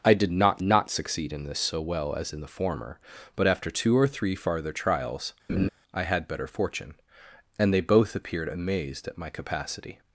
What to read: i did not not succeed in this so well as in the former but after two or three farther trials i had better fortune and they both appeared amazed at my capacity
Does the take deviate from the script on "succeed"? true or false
false